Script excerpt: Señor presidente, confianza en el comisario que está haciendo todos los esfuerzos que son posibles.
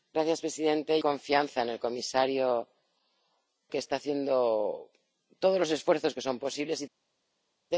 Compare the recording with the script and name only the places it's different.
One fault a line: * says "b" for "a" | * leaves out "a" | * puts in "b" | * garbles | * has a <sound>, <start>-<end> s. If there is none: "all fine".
all fine